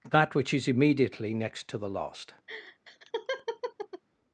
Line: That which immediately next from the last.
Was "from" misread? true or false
true